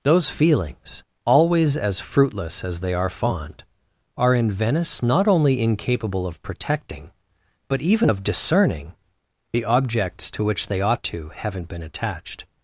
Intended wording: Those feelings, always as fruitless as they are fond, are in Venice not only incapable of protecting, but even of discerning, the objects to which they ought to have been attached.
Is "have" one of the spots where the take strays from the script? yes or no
yes